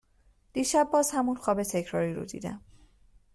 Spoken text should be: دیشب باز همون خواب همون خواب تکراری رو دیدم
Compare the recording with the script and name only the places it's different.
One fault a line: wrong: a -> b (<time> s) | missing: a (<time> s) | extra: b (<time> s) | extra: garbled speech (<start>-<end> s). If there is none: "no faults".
missing: همون خواب (1.6 s)